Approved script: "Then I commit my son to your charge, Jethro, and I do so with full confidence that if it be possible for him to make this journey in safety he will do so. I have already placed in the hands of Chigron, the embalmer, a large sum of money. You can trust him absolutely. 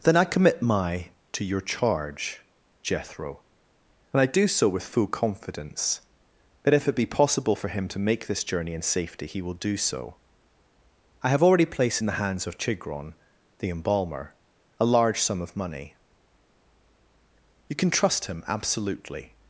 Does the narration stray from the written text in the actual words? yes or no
yes